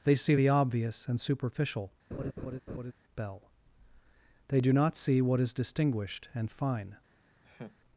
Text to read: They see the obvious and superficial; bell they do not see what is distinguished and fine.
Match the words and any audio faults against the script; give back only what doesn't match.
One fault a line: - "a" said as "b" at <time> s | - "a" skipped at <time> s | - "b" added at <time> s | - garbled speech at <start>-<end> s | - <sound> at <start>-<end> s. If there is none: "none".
- laugh at 2.1-2.9 s
- laugh at 7.4-7.8 s